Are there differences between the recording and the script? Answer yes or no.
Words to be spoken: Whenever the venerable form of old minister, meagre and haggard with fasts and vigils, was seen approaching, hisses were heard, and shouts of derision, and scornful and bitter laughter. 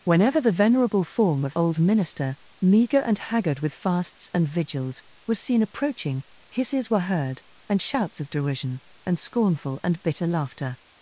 no